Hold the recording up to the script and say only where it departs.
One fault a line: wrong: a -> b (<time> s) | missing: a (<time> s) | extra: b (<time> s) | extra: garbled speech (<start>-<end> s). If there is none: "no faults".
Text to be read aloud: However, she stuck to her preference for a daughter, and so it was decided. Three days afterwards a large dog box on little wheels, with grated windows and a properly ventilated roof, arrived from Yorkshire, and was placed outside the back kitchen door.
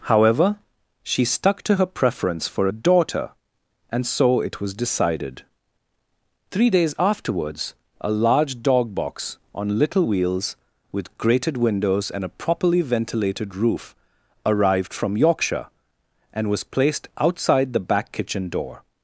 no faults